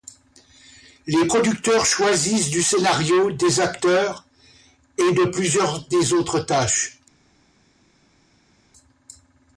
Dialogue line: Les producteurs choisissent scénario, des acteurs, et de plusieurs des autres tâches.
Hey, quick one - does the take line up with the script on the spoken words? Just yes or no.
no